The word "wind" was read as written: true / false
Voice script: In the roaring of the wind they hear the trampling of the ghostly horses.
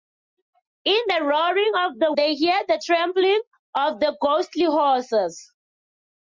false